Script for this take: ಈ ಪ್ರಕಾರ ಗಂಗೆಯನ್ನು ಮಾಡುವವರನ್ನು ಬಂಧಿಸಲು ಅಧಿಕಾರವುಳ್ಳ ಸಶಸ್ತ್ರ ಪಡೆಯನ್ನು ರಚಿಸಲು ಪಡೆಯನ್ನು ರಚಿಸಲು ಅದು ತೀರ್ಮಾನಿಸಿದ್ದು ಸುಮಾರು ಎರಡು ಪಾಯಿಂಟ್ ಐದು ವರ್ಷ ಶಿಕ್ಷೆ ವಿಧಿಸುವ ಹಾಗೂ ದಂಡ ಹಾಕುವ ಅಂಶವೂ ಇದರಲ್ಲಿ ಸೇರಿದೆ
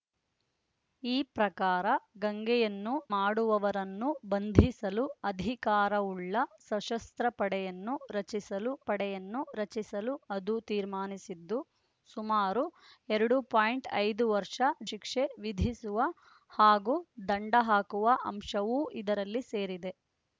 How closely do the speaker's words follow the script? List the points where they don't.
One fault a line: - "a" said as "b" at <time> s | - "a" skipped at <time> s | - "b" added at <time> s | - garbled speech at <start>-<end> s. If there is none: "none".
none